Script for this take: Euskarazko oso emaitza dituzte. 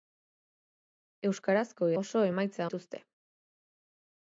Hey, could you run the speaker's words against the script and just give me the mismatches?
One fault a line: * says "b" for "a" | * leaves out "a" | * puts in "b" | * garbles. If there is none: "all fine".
all fine